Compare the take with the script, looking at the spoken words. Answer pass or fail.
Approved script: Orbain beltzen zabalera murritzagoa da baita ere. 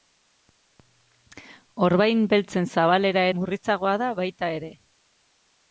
pass